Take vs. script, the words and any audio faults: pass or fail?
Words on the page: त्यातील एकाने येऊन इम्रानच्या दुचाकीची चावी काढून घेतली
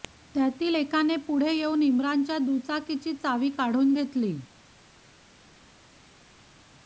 fail